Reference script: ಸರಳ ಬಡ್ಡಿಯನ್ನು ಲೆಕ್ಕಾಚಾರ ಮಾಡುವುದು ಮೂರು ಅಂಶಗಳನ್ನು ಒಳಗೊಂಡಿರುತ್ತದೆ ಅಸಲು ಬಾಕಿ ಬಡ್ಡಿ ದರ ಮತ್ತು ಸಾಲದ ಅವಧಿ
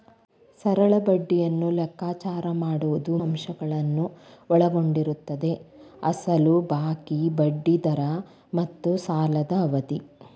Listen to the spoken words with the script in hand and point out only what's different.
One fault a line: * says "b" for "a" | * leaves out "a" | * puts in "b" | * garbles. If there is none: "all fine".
* leaves out "ಮೂರು"